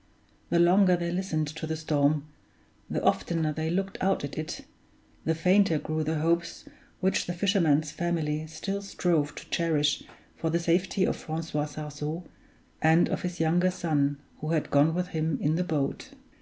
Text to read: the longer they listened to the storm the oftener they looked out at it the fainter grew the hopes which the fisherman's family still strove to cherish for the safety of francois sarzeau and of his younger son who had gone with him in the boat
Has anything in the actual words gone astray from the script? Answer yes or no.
no